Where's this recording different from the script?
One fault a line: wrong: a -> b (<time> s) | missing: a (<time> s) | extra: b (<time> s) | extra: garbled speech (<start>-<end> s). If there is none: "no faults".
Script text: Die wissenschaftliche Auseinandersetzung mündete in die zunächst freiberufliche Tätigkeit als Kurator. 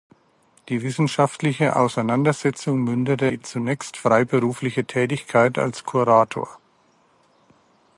missing: in (3.3 s)